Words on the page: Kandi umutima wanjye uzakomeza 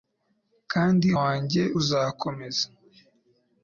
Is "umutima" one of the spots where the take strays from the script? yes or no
yes